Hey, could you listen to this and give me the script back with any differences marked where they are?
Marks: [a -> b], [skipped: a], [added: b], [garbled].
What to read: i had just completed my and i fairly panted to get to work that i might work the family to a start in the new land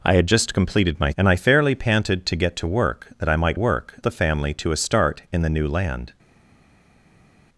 i had just completed my and i fairly panted to get to work that i might work the family to a start in the new land